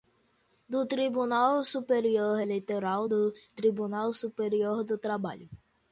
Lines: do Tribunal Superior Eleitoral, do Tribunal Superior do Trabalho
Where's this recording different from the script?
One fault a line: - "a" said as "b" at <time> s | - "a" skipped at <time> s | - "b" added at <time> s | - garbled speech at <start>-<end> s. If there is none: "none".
none